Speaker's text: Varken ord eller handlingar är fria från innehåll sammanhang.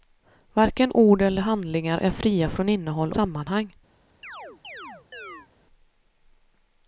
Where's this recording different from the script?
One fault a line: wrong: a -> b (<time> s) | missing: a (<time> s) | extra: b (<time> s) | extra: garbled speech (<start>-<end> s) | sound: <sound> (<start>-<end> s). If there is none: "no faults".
sound: chirp (4.2-5.5 s)